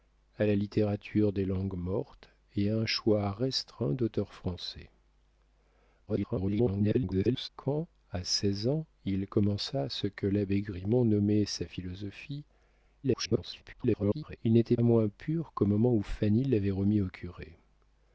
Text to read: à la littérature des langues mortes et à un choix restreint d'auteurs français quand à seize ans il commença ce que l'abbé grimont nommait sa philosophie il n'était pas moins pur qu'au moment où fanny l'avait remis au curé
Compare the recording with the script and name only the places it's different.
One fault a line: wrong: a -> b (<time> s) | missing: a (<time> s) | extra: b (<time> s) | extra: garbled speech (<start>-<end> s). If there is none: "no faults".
extra: garbled speech (6.1-7.5 s)
extra: garbled speech (13.0-14.4 s)
missing: pas (14.8 s)